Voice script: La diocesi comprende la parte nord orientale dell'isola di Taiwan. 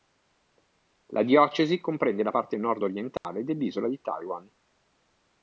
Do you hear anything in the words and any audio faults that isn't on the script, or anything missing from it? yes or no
yes